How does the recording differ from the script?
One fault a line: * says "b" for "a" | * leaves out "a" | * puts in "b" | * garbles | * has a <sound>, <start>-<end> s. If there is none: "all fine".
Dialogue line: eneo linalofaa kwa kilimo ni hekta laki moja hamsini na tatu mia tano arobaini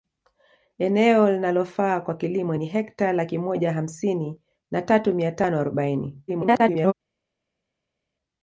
* garbles